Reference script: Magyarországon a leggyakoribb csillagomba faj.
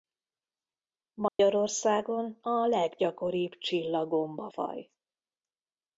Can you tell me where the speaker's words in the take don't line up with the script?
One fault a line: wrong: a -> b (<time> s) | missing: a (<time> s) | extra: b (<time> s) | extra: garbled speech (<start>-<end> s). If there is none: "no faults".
no faults